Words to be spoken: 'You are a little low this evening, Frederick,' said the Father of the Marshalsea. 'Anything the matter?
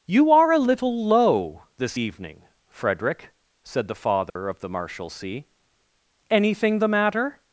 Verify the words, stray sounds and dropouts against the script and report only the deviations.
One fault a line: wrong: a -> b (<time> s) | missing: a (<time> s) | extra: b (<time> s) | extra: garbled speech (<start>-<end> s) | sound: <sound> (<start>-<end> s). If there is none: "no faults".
sound: dropout (4.3-4.4 s)